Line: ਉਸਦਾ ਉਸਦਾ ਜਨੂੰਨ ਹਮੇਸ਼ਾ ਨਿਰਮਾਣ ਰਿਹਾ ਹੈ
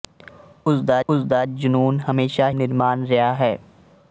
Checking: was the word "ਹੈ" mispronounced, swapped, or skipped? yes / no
no